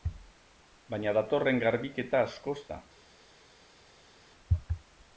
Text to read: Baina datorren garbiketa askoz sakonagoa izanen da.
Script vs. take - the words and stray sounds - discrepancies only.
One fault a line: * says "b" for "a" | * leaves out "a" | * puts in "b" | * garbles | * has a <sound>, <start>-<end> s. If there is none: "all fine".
* leaves out "sakonagoa izanen"